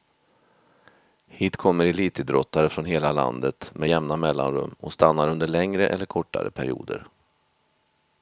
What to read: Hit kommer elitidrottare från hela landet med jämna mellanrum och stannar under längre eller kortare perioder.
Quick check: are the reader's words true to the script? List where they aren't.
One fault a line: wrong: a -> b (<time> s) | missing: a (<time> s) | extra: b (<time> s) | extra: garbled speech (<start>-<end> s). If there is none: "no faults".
no faults